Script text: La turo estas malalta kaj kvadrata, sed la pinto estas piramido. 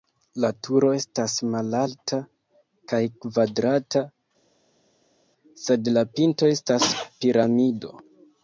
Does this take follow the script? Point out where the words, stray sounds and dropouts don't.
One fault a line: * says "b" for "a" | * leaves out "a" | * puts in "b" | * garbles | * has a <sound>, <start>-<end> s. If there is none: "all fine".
all fine